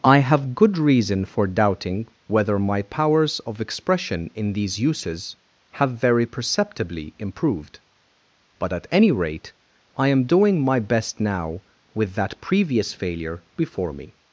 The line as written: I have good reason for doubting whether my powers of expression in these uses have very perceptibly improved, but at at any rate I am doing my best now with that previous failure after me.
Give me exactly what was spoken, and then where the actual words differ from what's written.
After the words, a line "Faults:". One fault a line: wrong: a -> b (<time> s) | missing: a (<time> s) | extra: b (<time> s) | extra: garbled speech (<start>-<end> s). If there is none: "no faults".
I have good reason for doubting whether my powers of expression in these uses have very perceptibly improved, but at any rate I am doing my best now with that previous failure before me.
Faults:
missing: at (8.9 s)
wrong: after -> before (13.6 s)